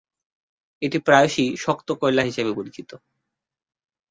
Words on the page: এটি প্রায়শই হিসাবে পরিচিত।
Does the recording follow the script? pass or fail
fail